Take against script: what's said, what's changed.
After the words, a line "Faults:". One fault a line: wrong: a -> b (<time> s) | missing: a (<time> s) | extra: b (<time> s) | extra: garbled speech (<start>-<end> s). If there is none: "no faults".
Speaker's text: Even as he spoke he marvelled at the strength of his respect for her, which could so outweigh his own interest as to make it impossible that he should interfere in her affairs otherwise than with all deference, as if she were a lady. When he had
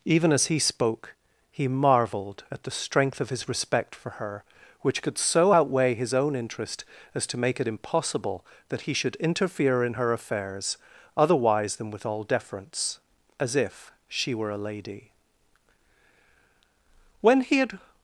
Even as he spoke he marvelled at the strength of his respect for her, which could so outweigh his own interest as to make it impossible that he should interfere in her affairs otherwise than with all deference, as if she were a lady. When he had
Faults:
no faults